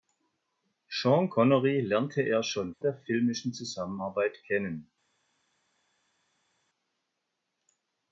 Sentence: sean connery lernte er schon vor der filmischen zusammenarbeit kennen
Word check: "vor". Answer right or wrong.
wrong